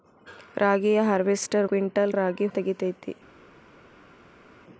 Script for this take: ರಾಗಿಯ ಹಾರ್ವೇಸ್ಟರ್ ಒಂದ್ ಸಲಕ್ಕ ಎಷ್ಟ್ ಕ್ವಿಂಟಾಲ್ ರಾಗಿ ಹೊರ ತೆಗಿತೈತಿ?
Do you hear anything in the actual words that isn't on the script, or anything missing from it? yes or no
yes